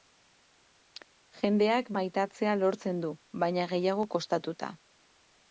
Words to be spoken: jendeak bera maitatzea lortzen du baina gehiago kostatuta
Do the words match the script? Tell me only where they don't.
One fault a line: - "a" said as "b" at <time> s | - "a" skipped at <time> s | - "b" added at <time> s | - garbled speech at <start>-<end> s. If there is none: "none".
- "bera" skipped at 1.9 s